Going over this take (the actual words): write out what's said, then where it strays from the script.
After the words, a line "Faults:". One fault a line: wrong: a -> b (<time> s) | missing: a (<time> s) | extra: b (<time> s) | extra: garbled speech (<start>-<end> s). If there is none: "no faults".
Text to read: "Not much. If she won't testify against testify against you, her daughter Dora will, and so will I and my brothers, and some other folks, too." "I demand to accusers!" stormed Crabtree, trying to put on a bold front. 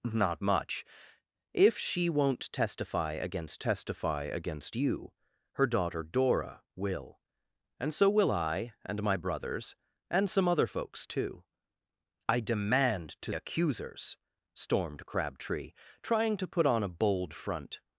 "Not much. If she won't testify against testify against you, her daughter Dora will, and so will I and my brothers, and some other folks, too." "I demand to accusers!" stormed Crabtree, trying to put on a bold front.
Faults:
no faults